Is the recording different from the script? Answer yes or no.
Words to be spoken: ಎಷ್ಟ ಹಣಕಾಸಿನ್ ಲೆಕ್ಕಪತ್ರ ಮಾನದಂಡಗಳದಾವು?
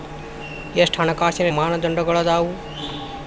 yes